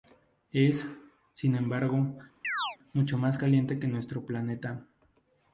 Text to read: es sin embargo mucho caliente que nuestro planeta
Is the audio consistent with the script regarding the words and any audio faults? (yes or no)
no